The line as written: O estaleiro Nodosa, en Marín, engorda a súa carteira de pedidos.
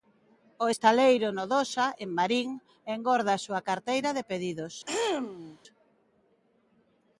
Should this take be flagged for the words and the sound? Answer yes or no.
yes